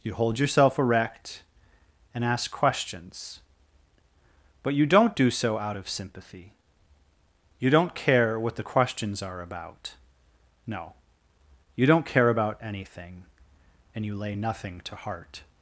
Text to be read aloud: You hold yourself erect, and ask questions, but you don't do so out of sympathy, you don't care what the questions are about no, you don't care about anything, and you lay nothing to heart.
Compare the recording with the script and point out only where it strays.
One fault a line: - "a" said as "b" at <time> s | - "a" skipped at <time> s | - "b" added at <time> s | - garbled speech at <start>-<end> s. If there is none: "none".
none